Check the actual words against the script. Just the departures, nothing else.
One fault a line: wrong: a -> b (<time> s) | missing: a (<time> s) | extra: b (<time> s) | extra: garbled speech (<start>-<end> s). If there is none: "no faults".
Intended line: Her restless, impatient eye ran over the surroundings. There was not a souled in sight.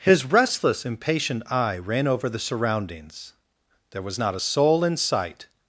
wrong: Her -> His (0.0 s)
wrong: souled -> soul (4.4 s)